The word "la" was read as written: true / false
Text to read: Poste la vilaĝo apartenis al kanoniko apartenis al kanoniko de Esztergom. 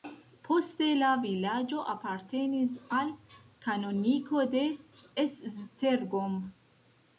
true